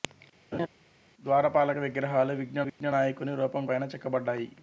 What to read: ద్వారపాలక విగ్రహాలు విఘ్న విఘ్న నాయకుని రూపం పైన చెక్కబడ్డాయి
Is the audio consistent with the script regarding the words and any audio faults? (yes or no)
no